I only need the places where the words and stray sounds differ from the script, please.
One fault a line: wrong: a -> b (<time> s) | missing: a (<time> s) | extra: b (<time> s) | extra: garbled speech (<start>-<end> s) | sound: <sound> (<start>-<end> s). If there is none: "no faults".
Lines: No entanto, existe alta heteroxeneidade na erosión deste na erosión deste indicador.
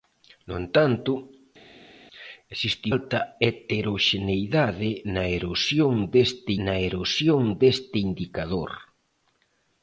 no faults